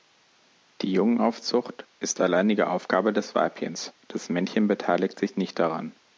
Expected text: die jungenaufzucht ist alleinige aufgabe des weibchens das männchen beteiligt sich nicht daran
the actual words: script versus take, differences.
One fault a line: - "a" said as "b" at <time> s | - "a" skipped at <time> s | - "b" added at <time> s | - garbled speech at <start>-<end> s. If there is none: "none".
none